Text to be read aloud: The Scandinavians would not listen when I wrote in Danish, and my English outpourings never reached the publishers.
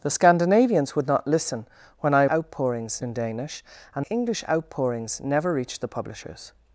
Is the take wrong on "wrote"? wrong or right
wrong